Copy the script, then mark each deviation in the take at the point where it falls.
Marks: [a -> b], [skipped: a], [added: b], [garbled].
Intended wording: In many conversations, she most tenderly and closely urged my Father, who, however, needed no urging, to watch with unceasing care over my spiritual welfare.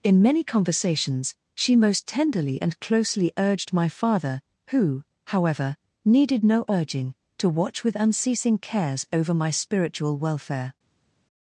In many conversations, she most tenderly and closely urged my Father, who, however, needed no urging, to watch with unceasing [care -> cares] over my spiritual welfare.